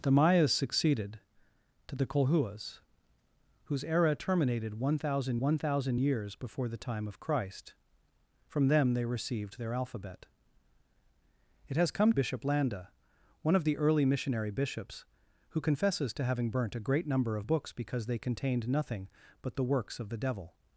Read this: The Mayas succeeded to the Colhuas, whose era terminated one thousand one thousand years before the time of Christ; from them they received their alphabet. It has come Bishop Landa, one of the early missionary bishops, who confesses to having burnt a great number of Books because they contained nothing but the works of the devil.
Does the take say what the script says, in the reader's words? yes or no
yes